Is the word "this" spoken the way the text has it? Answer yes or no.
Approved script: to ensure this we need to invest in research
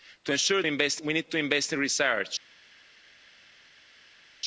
no